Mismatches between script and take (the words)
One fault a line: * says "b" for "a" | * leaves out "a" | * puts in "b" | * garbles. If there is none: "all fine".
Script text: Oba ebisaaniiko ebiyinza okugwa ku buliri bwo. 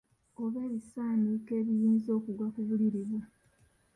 all fine